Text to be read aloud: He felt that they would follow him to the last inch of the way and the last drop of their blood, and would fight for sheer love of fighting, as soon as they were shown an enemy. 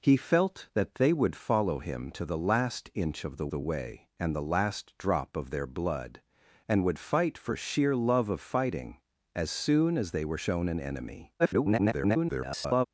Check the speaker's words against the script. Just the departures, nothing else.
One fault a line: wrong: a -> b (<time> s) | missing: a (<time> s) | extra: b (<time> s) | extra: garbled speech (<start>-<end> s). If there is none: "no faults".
extra: the (3.5 s)
extra: garbled speech (11.4-12.9 s)